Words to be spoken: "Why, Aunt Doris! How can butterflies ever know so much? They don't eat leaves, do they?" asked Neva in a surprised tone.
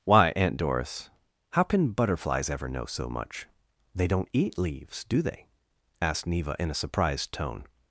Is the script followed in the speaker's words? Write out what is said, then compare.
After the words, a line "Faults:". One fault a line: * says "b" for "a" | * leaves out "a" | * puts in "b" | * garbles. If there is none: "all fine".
"Why, Aunt Doris! How can butterflies ever know so much? They don't eat leaves, do they?" asked Neva in a surprised tone.
Faults:
all fine